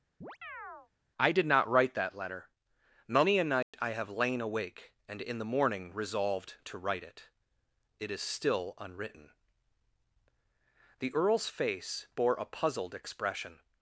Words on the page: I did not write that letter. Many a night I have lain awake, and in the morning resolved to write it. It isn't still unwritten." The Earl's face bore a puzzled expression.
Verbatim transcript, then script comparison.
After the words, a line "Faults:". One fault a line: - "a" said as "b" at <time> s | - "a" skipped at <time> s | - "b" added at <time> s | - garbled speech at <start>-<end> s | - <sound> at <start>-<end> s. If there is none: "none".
I did not write that letter. Many a night I have lain awake, and in the morning resolved to write it. It is still unwritten." The Earl's face bore a puzzled expression.
Faults:
- chirp at 0.2-0.9 s
- dropout at 3.6-3.7 s
- "isn't" said as "is" at 8.1 s